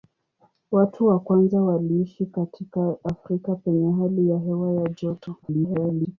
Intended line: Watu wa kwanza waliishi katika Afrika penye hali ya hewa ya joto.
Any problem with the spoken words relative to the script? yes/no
yes